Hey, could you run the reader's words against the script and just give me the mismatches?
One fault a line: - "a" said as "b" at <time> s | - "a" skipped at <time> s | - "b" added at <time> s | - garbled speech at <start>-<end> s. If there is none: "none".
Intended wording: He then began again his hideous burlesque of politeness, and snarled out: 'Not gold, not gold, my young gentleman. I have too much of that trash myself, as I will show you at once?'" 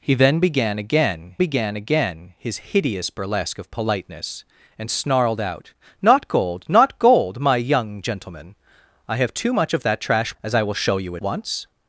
- "began again" added at 1.4 s
- "myself" skipped at 10.3 s
- "at" skipped at 11.2 s